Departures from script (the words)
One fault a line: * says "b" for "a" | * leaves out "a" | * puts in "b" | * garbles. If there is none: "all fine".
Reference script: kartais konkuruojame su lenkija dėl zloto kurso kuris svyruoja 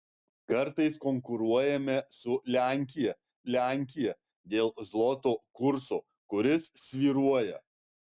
* puts in "lenkija"